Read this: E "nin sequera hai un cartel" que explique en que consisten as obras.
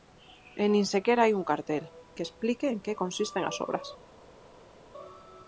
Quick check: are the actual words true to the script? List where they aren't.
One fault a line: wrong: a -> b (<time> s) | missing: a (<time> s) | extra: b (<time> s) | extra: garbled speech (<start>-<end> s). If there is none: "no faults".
no faults